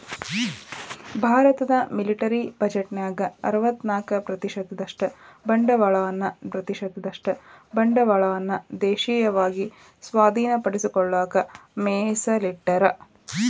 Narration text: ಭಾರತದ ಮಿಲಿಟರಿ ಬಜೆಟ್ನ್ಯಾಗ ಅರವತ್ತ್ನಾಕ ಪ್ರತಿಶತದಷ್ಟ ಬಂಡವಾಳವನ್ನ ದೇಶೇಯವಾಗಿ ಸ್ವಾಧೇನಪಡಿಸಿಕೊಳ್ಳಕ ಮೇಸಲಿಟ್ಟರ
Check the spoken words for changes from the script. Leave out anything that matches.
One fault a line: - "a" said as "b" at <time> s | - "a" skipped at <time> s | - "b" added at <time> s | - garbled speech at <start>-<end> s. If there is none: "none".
- "ಪ್ರತಿಶತದಷ್ಟ ಬಂಡವಾಳವನ್ನ" added at 6.5 s